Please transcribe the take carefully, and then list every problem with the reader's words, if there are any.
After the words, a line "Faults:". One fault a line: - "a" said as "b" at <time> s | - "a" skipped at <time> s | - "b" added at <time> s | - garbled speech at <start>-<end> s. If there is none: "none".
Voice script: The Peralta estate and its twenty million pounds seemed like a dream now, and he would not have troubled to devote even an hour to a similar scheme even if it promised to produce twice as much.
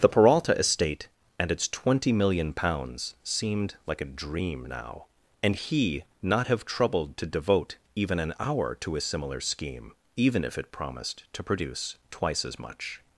The Peralta estate and its twenty million pounds seemed like a dream now, and he not have troubled to devote even an hour to a similar scheme even if it promised to produce twice as much.
Faults:
- "would" skipped at 6.0 s